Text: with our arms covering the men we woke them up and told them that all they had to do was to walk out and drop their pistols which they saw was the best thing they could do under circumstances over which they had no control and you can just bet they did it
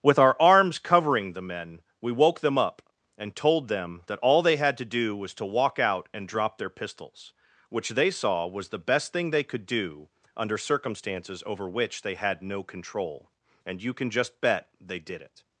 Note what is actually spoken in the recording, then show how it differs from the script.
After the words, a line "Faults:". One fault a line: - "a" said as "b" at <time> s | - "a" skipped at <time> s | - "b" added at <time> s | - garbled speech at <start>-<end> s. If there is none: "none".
with our arms covering the men we woke them up and told them that all they had to do was to walk out and drop their pistols which they saw was the best thing they could do under circumstances over which they had no control and you can just bet they did it
Faults:
none